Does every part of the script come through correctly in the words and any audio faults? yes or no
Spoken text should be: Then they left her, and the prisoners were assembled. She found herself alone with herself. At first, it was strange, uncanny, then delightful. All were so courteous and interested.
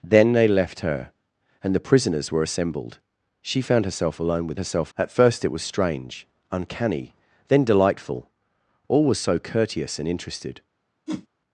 no